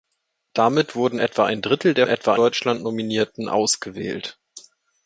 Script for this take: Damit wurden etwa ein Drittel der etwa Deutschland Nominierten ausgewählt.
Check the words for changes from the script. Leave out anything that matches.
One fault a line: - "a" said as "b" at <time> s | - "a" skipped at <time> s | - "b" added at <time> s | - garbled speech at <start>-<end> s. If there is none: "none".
none